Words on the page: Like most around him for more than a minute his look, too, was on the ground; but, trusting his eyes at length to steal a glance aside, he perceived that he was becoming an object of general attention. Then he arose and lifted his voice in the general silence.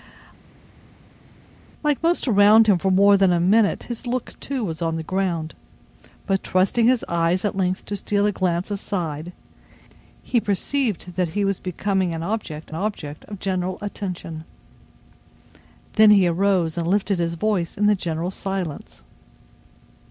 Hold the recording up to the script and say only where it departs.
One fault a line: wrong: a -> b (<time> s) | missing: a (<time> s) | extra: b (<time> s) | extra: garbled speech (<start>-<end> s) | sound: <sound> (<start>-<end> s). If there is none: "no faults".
extra: object (12.7 s)